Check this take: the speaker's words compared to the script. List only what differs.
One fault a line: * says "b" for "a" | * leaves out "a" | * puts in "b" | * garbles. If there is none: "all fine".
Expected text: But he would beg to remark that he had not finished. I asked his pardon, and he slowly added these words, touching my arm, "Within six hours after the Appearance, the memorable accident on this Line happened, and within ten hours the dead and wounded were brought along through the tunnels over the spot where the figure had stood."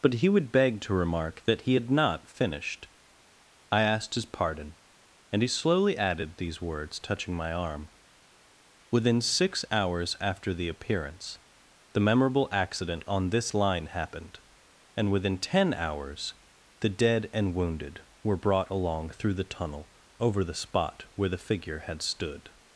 * says "tunnel" for "tunnels"